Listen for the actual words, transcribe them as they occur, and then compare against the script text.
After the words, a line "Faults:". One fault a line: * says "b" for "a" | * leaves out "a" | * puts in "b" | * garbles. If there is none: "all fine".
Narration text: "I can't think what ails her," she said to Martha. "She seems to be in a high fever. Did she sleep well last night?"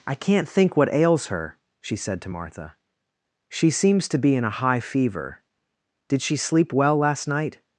"I can't think what ails her," she said to Martha. "She seems to be in a high fever. Did she sleep well last night?"
Faults:
all fine